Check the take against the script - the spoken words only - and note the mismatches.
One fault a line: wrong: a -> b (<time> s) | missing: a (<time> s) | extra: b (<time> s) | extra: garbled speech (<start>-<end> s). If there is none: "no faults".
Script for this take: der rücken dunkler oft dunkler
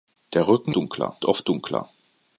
no faults